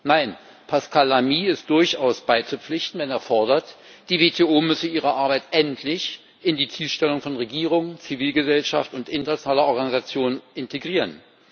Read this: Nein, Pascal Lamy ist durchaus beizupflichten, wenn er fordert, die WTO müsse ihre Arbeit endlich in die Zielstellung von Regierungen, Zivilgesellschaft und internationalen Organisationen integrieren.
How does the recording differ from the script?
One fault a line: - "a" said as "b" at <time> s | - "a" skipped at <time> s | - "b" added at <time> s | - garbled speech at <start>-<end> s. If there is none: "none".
none